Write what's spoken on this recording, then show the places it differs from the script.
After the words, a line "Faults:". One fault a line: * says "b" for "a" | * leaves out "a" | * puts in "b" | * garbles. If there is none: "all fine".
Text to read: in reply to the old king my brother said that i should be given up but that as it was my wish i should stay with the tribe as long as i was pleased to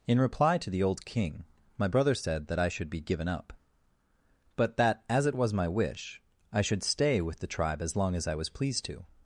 in reply to the old king my brother said that i should be given up but that as it was my wish i should stay with the tribe as long as i was pleased to
Faults:
all fine